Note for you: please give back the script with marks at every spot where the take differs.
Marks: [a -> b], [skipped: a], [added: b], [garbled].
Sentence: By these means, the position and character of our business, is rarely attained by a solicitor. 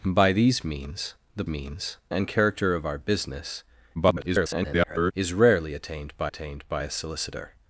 By these means, the [position -> means] and character of our business, [garbled] is rarely attained by [added: attained by] a solicitor.